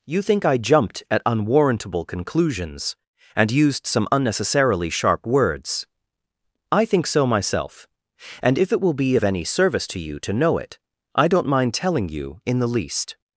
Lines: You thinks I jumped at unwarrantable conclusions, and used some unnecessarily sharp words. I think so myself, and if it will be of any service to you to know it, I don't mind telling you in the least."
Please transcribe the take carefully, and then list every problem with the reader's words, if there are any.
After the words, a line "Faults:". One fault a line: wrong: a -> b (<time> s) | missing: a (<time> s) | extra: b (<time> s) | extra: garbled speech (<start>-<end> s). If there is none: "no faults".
You think I jumped at unwarrantable conclusions, and used some unnecessarily sharp words. I think so myself, and if it will be of any service to you to know it, I don't mind telling you in the least."
Faults:
wrong: thinks -> think (0.2 s)